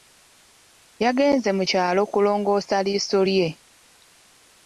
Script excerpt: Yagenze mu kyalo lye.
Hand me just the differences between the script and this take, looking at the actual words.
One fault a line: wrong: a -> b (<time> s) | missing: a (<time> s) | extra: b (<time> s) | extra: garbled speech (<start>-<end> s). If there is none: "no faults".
extra: kulongoosa liiso (2.1 s)